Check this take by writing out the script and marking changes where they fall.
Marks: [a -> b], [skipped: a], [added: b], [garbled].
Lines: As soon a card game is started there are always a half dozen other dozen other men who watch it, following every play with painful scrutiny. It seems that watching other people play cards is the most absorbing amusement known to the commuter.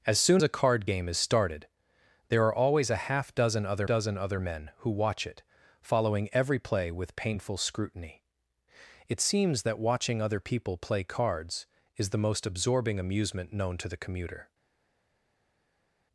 As soon a card game is started there are always a half dozen other dozen other men who watch it, following every play with painful scrutiny. It seems that watching other people play cards is the most absorbing amusement known to the commuter.